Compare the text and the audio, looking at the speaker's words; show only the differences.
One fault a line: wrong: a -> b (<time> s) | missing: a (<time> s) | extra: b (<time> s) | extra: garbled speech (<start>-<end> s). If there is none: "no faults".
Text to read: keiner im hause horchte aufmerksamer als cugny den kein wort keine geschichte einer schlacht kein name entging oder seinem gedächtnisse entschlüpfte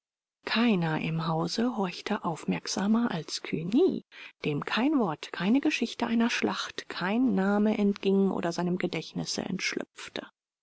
wrong: den -> dem (4.4 s)